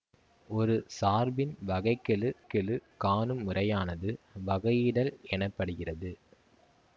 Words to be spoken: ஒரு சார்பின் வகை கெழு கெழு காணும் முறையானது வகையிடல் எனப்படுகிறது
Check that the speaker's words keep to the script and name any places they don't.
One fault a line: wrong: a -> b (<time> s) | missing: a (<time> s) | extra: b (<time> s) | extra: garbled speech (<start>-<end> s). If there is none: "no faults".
no faults